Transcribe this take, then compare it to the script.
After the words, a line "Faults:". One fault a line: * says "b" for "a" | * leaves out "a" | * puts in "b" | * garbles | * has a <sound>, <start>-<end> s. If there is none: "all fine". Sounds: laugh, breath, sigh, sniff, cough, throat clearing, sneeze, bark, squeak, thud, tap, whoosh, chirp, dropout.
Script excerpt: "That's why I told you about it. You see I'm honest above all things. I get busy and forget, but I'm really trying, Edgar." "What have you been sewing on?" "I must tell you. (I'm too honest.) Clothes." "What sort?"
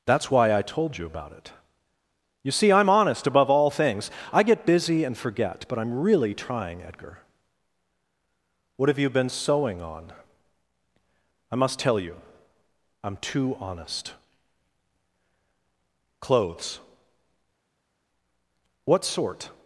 "That's why I told you about it. You see I'm honest above all things. I get busy and forget, but I'm really trying, Edgar." "What have you been sewing on?" "I must tell you. (I'm too honest.) Clothes." "What sort?"
Faults:
all fine